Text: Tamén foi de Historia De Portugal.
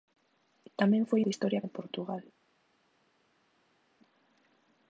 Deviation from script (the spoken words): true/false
false